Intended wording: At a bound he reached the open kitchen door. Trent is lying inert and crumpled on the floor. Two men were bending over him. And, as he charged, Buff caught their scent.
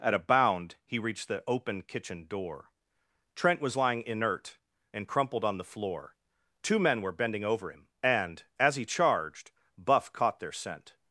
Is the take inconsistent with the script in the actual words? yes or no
yes